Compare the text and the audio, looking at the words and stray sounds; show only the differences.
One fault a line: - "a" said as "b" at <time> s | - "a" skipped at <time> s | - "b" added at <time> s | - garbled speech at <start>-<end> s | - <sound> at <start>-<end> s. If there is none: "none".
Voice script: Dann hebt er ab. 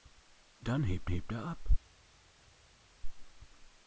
- "hebt" added at 1.0 s